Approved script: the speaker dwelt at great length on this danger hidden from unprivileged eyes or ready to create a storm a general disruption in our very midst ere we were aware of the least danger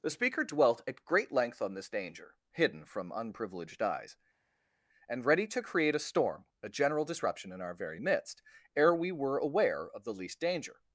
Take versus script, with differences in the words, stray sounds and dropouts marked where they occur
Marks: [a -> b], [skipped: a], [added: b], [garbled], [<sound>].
the speaker dwelt at great length on this danger hidden from unprivileged eyes [or -> and] ready to create a storm a general disruption in our very midst ere we were aware of the least danger